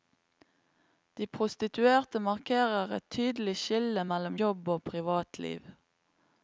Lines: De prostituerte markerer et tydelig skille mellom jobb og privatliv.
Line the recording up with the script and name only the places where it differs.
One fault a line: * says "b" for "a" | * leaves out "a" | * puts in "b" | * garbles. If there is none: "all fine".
all fine